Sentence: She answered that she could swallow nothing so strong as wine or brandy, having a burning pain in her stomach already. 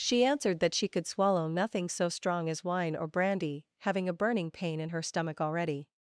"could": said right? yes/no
yes